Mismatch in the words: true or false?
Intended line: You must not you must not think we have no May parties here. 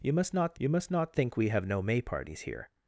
false